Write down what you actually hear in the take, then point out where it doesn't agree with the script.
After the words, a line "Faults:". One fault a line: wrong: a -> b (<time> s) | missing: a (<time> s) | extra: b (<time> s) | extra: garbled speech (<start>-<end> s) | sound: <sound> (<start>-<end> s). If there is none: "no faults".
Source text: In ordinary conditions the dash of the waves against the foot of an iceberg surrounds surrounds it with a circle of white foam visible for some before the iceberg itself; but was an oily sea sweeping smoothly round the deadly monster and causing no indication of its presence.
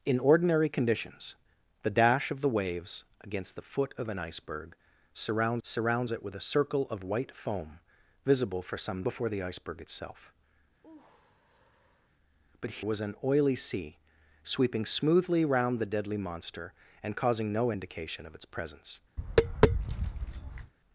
In ordinary conditions the dash of the waves against the foot of an iceberg surrounds surrounds it with a circle of white foam visible for some before the iceberg itself; but was an oily sea sweeping smoothly round the deadly monster and causing no indication of its presence.
Faults:
sound: sigh (10.8-12.1 s)
sound: tap (19.2-20.7 s)